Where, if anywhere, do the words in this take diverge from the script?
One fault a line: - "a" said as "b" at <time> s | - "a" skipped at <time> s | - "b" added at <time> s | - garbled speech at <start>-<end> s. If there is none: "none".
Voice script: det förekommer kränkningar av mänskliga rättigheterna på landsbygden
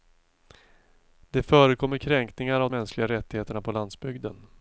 none